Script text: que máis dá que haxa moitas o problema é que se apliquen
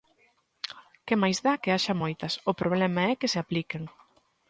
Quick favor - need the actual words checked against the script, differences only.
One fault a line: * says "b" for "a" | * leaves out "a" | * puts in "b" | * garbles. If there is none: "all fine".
all fine